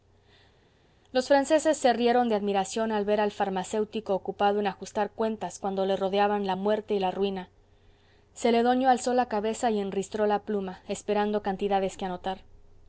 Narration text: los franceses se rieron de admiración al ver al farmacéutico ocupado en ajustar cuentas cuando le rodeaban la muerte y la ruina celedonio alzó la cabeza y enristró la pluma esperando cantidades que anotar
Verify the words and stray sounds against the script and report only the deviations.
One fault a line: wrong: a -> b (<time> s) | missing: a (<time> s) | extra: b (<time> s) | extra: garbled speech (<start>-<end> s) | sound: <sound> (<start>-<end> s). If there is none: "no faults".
no faults